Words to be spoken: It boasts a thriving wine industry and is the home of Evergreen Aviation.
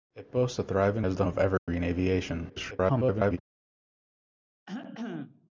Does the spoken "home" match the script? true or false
false